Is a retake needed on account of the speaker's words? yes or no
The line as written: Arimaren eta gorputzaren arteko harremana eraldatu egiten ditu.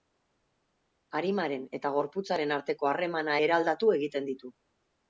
no